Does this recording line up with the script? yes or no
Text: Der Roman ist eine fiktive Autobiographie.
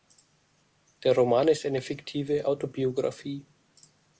yes